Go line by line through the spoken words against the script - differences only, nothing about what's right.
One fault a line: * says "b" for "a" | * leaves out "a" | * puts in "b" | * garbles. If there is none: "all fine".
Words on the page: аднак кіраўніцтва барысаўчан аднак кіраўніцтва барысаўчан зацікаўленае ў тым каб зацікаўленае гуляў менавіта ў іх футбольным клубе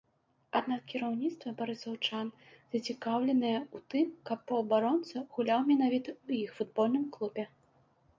* leaves out "аднак кіраўніцтва барысаўчан"
* says "паўабаронца" for "зацікаўленае"